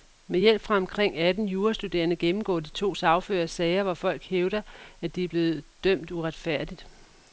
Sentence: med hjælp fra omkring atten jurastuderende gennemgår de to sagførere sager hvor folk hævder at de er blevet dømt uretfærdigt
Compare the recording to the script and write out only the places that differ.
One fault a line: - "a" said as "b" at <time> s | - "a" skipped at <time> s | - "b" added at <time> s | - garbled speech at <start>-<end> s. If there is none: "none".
none